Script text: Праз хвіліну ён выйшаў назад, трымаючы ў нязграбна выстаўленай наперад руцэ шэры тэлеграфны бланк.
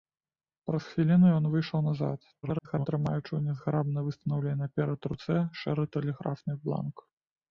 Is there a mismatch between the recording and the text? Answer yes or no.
yes